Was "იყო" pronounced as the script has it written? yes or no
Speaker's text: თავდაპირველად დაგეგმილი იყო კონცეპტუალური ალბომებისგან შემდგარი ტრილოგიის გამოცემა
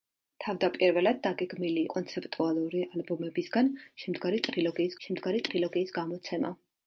no